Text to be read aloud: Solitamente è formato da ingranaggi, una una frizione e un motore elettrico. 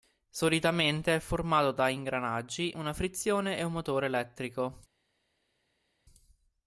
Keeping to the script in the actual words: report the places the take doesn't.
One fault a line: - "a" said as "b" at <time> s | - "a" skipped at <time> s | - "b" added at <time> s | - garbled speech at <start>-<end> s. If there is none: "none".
- "una" skipped at 2.9 s